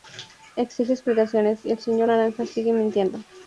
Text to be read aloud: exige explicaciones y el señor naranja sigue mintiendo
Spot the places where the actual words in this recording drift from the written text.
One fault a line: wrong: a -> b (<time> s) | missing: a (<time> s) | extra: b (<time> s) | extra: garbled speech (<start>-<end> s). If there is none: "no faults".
no faults